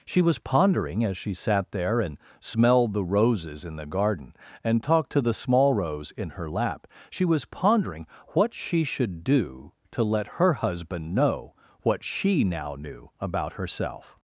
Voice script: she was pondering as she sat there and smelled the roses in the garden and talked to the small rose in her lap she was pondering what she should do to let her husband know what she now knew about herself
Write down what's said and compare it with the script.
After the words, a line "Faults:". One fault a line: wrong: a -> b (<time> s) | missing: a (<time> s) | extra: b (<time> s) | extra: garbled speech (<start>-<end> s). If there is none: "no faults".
she was pondering as she sat there and smelled the roses in the garden and talked to the small rose in her lap she was pondering what she should do to let her husband know what she now knew about herself
Faults:
no faults